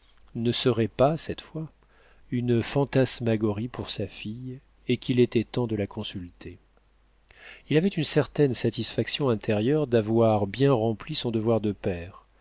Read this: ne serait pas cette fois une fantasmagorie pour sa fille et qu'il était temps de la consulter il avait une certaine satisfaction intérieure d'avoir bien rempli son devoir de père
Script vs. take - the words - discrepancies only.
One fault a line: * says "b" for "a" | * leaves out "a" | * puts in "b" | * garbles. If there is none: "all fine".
all fine